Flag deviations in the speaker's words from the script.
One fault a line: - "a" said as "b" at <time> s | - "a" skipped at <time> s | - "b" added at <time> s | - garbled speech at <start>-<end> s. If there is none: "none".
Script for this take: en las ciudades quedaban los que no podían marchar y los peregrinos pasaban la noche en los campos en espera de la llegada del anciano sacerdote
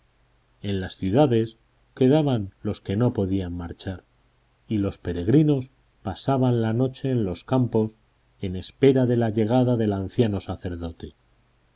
none